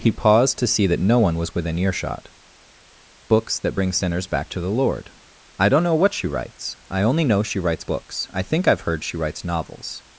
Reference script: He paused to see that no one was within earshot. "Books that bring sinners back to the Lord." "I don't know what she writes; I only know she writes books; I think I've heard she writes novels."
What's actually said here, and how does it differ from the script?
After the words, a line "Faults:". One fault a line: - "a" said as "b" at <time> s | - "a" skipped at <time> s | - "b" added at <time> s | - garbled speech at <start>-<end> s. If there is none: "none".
He paused to see that no one was within earshot. "Books that bring sinners back to the Lord." "I don't know what she writes; I only know she writes books; I think I've heard she writes novels."
Faults:
none